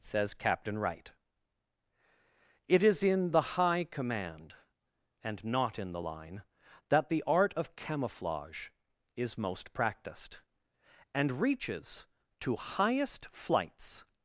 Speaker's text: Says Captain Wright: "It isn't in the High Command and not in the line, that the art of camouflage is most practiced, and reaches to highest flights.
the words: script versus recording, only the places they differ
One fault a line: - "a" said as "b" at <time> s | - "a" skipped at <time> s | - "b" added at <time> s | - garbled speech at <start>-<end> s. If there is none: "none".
- "isn't" said as "is" at 2.8 s